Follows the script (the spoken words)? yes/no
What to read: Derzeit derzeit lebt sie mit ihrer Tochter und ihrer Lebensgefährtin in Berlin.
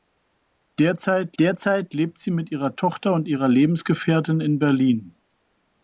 yes